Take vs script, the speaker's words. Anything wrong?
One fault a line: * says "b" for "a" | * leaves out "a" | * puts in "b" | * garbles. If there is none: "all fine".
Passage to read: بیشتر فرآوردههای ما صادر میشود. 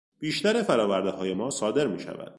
all fine